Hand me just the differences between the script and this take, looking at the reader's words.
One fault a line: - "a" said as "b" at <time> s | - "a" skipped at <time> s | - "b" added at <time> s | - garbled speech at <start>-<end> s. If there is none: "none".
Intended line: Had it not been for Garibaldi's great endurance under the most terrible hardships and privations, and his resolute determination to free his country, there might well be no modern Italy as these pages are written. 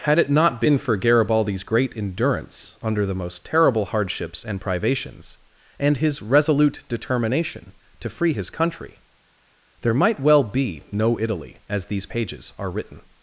- "modern" skipped at 11.2 s